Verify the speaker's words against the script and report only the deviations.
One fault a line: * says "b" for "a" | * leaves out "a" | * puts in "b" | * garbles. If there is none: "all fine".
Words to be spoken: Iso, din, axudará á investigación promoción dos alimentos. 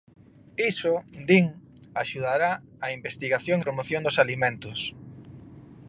all fine